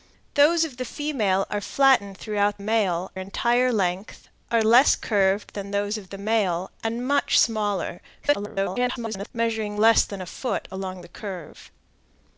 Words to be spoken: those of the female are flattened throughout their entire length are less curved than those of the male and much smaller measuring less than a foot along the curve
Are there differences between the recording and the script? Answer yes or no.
yes